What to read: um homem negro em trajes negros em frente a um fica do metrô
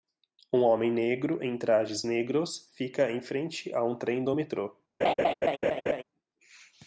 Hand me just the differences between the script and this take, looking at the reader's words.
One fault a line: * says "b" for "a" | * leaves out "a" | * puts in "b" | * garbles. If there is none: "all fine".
* puts in "fica"
* says "trem" for "fica"